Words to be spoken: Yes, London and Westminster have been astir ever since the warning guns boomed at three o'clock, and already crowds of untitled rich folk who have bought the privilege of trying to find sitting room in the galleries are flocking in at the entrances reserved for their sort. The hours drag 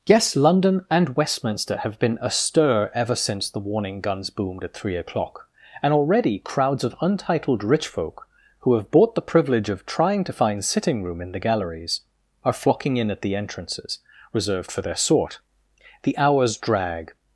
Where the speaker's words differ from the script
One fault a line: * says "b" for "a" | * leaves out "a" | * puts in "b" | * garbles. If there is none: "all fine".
all fine